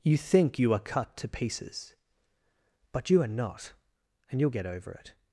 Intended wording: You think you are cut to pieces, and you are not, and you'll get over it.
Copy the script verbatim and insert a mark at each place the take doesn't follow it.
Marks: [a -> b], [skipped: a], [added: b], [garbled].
You think you are cut to pieces, [and -> but] you are not, and you'll get over it.